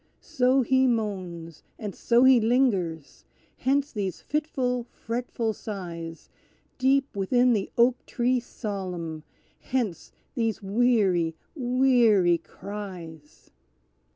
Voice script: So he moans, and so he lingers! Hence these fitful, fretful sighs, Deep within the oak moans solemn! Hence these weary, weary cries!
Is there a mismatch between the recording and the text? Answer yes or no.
yes